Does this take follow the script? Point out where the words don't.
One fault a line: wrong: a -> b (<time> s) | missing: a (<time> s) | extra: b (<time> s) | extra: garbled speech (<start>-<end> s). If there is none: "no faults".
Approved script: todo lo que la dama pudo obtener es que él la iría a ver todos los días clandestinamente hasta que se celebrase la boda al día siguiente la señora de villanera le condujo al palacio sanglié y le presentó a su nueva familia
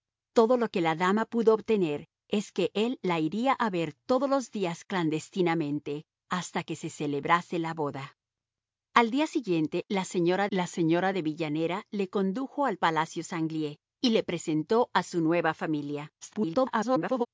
extra: la señora (10.5 s)
extra: garbled speech (16.2-17.3 s)